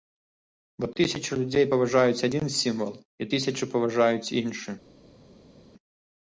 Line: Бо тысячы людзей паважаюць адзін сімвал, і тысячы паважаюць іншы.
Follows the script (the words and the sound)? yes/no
yes